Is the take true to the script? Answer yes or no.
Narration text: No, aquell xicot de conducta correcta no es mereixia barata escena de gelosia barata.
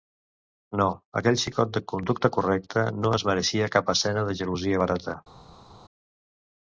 no